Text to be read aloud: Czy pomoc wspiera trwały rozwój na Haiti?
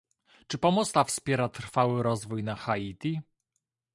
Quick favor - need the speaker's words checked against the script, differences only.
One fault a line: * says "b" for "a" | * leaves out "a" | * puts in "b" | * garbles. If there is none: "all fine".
* puts in "ta"